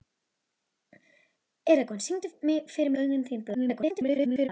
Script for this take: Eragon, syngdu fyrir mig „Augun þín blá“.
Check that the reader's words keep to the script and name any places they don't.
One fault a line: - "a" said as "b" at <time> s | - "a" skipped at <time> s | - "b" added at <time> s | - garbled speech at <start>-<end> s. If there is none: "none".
- "mig" skipped at 2.9 s
- garbled speech at 3.5-4.5 s